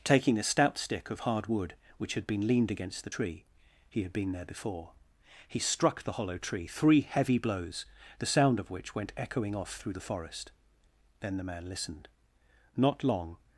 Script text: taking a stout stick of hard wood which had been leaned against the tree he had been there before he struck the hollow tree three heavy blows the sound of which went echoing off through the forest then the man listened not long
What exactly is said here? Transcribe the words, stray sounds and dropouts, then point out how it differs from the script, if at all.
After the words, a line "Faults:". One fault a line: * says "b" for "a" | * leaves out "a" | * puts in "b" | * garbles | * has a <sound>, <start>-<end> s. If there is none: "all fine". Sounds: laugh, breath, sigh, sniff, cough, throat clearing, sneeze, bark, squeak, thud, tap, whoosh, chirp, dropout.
taking a stout stick of hard wood which had been leaned against the tree he had been there before he struck the hollow tree three heavy blows the sound of which went echoing off through the forest then the man listened not long
Faults:
all fine